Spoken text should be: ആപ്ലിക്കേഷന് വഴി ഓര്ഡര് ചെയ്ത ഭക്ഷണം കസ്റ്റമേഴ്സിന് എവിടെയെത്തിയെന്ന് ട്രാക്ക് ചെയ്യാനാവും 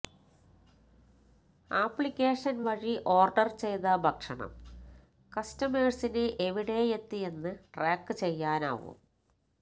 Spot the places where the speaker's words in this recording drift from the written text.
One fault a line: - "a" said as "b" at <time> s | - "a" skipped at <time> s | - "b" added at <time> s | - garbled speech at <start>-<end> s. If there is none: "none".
none